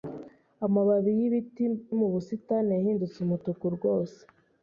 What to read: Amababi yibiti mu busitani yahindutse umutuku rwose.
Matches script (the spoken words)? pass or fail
pass